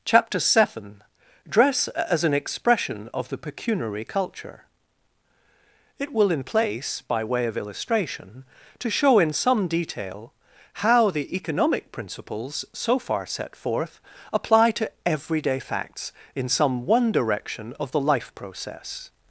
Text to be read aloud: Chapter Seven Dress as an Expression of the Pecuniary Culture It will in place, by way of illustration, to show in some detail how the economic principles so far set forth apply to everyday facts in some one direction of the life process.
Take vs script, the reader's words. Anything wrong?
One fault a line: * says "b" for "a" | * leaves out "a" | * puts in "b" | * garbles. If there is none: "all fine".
all fine